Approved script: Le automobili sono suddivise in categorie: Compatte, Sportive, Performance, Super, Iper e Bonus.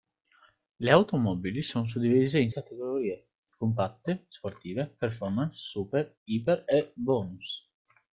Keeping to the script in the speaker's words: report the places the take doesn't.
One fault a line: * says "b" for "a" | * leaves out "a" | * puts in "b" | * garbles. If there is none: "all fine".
all fine